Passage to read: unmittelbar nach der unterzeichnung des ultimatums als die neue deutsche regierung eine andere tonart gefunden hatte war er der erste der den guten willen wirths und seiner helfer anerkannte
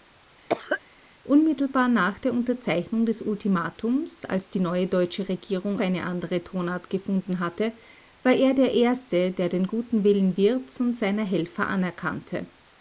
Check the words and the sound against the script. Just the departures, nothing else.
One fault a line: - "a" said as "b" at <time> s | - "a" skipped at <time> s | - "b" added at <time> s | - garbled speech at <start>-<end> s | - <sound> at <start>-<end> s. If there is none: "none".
- cough at 0.5-0.8 s